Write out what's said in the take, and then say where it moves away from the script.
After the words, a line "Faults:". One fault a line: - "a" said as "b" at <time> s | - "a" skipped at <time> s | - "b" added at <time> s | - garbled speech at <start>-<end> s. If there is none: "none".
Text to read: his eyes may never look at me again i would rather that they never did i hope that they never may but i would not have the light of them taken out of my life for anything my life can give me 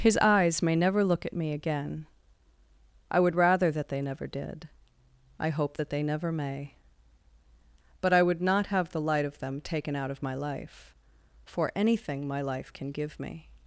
his eyes may never look at me again i would rather that they never did i hope that they never may but i would not have the light of them taken out of my life for anything my life can give me
Faults:
none